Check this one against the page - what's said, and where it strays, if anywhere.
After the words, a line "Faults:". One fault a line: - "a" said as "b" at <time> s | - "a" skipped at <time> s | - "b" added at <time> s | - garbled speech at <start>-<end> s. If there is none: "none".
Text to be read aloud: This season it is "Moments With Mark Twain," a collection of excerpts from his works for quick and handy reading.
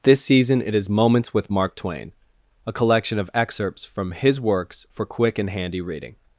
This season it is "Moments With Mark Twain," a collection of excerpts from his works for quick and handy reading.
Faults:
none